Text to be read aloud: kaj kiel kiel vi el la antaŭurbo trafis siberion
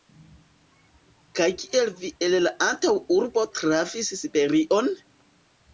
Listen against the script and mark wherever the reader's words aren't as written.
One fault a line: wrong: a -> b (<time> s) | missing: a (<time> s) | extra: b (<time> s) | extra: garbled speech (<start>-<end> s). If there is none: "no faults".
missing: kiel (1.9 s)